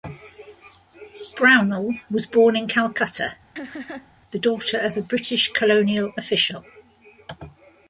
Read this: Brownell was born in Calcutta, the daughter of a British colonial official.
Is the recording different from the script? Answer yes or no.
no